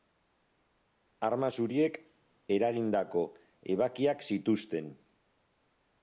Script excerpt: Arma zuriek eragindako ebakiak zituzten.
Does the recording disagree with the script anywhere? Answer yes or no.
no